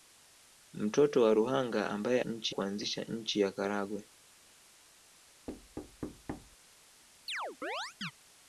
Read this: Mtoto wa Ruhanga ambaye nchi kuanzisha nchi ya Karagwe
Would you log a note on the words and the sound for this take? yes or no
yes